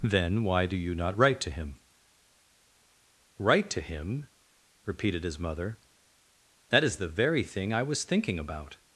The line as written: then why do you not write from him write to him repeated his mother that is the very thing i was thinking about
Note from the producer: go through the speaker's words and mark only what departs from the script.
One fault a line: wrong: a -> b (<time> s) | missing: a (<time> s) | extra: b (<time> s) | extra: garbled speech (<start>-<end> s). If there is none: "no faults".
wrong: from -> to (1.4 s)